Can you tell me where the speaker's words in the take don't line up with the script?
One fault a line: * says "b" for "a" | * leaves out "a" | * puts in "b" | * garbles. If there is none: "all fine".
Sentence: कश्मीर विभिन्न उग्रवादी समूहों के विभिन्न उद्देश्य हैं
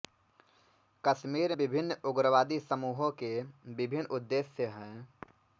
all fine